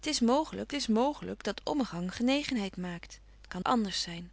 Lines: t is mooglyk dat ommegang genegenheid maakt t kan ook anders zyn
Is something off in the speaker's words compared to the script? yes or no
yes